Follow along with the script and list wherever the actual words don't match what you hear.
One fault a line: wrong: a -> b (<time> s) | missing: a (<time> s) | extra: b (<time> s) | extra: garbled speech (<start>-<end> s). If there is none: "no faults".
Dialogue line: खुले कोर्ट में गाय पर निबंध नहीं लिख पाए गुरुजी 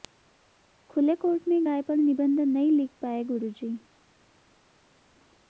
no faults